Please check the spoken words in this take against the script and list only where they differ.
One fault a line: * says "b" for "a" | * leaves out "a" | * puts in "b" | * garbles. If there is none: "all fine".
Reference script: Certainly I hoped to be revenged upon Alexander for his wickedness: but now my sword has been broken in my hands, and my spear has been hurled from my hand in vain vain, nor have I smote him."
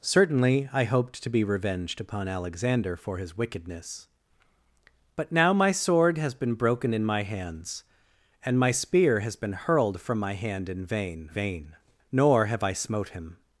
all fine